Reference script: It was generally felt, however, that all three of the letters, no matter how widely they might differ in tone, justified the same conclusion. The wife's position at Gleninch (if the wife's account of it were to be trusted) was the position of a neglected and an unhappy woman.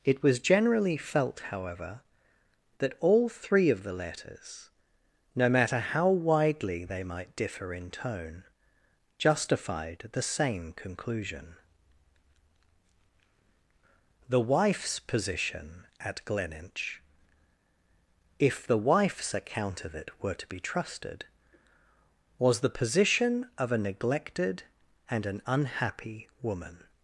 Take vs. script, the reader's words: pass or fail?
pass